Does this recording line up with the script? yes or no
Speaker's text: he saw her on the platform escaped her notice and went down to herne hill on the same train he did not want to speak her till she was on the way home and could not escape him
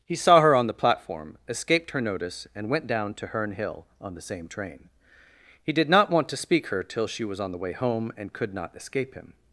yes